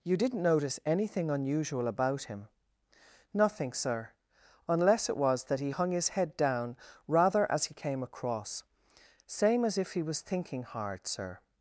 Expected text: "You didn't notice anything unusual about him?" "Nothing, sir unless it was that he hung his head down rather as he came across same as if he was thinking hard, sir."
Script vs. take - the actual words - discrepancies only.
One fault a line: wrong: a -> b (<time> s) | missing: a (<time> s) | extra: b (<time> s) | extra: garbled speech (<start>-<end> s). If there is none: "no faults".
no faults